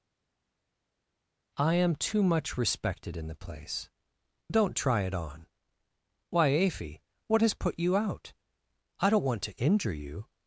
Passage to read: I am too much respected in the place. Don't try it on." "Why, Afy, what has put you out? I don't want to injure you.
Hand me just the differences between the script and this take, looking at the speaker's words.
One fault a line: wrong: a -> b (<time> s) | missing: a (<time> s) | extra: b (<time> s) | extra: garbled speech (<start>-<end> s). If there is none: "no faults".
no faults